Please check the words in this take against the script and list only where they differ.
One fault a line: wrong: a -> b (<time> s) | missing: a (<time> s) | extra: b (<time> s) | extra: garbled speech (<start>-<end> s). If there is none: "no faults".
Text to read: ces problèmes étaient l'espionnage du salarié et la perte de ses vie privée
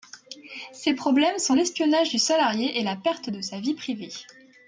wrong: étaient -> sont (1.4 s)
wrong: ses -> sa (3.4 s)